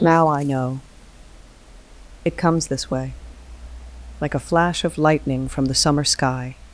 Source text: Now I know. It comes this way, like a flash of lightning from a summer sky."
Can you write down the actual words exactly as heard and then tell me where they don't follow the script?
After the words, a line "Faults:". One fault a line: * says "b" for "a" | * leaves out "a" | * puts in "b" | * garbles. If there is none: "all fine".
Now I know. It comes this way, like a flash of lightning from the summer sky."
Faults:
* says "the" for "a"